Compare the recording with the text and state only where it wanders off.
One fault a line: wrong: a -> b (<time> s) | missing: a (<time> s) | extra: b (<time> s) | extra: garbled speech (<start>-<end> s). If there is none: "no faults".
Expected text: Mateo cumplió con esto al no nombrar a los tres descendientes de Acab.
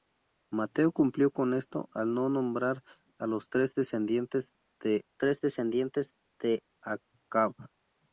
extra: tres descendientes de (5.2 s)